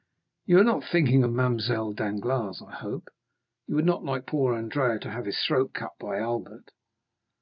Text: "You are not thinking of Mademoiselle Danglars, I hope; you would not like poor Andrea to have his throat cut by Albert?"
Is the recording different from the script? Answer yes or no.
no